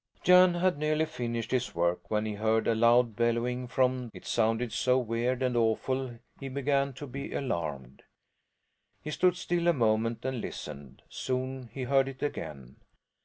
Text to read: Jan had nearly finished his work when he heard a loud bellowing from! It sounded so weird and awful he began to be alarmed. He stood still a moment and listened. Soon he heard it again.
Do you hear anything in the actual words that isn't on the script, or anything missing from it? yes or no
no